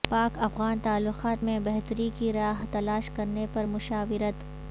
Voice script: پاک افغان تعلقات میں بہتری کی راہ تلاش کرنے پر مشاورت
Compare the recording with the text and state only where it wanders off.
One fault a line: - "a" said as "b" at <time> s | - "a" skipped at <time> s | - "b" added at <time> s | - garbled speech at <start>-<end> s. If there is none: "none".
none